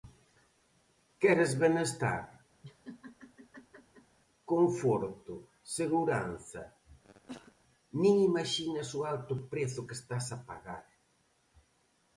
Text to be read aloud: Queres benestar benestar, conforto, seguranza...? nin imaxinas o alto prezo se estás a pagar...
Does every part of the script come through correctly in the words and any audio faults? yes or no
no